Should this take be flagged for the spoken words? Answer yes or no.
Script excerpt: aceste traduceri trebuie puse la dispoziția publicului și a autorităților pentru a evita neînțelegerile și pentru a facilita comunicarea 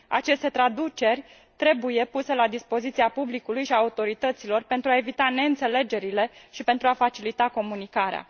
no